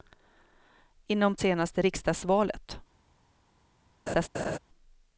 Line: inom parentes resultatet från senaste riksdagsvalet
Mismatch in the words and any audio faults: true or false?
true